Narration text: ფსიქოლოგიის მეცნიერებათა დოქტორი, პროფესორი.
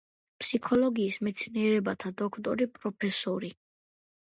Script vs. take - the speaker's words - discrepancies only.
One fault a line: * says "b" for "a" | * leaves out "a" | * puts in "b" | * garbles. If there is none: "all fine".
all fine